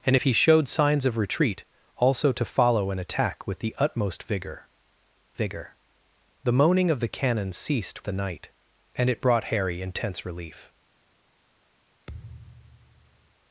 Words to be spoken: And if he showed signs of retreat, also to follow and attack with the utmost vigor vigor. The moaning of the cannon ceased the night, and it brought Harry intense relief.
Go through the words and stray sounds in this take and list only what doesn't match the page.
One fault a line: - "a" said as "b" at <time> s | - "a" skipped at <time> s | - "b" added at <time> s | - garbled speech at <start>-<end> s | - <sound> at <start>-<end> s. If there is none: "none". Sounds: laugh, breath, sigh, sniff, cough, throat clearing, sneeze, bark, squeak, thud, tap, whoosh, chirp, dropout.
- thud at 12.1-13.4 s